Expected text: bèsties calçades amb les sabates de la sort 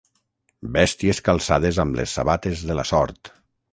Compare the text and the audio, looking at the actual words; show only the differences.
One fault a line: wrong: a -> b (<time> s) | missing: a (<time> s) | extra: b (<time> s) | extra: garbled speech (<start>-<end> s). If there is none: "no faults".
no faults